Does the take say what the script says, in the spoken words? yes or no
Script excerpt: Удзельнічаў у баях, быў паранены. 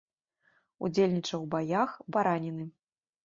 no